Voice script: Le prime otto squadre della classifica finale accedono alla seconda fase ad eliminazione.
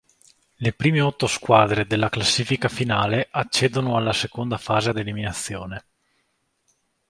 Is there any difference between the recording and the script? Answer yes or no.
no